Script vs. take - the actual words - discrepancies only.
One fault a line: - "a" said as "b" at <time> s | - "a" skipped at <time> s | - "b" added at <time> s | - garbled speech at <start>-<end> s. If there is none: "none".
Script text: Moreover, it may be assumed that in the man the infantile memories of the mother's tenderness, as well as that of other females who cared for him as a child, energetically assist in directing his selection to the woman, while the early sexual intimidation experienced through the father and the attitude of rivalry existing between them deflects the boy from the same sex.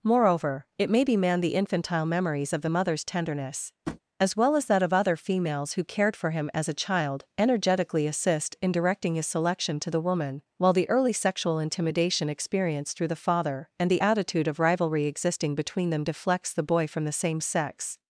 - "assumed that in the" skipped at 1.2 s